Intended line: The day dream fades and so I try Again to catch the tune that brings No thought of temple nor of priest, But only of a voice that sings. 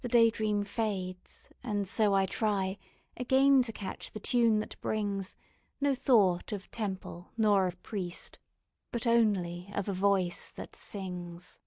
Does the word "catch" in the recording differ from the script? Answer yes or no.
no